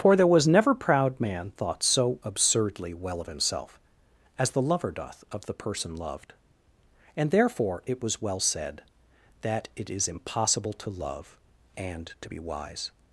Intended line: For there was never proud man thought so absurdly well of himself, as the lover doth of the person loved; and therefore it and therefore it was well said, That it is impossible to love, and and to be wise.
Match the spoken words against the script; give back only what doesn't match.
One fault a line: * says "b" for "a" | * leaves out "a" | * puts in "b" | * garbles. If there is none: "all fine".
* leaves out "and therefore it"
* leaves out "and"